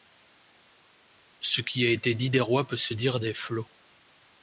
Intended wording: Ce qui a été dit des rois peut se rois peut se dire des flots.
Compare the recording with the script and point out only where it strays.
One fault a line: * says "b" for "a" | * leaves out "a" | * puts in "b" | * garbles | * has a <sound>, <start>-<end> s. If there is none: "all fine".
* leaves out "rois peut se"